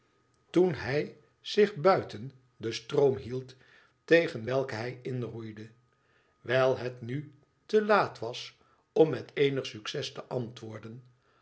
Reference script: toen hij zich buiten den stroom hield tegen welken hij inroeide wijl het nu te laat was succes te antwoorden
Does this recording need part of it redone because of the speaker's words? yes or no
yes